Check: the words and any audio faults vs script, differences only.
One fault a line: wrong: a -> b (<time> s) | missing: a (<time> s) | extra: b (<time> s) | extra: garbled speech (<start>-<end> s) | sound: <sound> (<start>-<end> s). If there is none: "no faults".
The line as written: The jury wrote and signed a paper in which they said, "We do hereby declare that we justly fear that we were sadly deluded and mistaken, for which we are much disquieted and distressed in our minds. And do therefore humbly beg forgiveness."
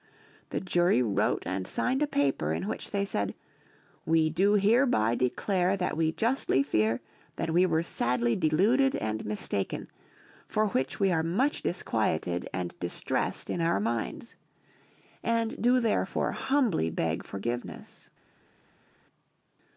no faults